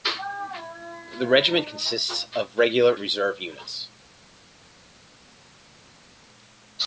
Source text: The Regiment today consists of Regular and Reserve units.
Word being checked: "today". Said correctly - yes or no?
no